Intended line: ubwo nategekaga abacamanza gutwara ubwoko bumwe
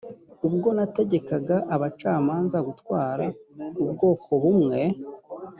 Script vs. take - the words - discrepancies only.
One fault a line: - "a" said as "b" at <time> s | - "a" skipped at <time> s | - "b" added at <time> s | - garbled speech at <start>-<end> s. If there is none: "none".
none